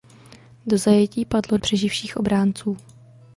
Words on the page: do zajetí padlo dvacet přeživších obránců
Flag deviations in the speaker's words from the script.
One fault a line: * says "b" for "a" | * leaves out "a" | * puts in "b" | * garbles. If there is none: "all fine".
* leaves out "dvacet"